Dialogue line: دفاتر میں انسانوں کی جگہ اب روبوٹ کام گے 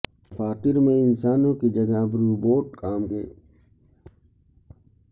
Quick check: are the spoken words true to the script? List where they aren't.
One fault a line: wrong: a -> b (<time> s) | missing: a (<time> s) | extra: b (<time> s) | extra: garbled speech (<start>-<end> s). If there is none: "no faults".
no faults